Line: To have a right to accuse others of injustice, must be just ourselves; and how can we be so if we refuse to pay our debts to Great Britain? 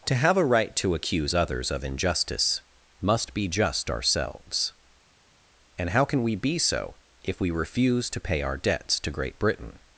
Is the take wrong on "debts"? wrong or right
right